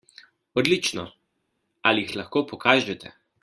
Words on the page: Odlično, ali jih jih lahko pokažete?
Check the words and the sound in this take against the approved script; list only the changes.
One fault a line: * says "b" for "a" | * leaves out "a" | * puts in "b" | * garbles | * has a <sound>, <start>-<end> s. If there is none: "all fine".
all fine